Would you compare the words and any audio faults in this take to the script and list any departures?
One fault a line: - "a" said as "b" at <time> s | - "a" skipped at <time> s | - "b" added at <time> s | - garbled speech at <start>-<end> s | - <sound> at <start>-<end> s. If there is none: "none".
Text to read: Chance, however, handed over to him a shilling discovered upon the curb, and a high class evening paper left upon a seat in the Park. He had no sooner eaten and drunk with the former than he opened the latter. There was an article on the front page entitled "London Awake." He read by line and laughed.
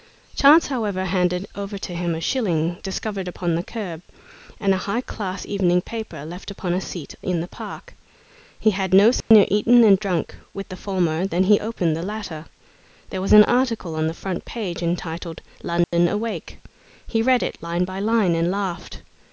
- dropout at 9.2-9.3 s
- dropout at 15.8-15.9 s
- "it line" added at 17.4 s